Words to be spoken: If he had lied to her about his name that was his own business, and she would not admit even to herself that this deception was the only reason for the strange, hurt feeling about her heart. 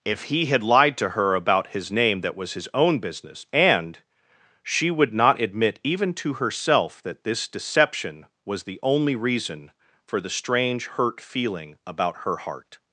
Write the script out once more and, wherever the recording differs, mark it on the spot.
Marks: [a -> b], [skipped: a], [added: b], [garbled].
If he had lied to her about his name that was his own business, and she would not admit even to herself that this deception was the only reason for the strange, hurt feeling about her heart.